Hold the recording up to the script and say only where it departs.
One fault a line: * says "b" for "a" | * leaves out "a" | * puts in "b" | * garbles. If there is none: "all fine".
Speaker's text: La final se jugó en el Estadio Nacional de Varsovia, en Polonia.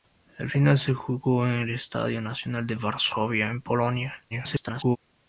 * garbles